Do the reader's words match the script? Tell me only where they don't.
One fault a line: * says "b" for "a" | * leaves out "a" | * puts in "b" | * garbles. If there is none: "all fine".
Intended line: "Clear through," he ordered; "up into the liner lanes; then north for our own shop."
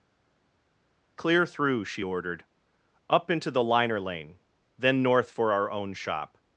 * says "she" for "he"
* says "lane" for "lanes"